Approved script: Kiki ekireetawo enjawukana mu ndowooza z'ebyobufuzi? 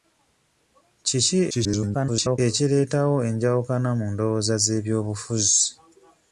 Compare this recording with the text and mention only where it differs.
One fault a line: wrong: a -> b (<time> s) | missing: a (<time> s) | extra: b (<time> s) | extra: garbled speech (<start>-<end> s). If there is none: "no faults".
extra: garbled speech (1.5-2.4 s)